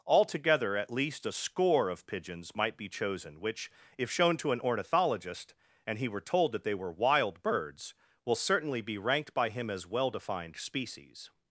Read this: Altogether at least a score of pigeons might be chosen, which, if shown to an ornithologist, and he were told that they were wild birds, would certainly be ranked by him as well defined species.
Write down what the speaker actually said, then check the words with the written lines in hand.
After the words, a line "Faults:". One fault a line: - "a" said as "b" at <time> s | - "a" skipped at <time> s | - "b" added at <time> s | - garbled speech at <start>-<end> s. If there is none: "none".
Altogether at least a score of pigeons might be chosen, which, if shown to an ornithologist, and he were told that they were wild birds, will certainly be ranked by him as well defined species.
Faults:
- "would" said as "will" at 8.2 s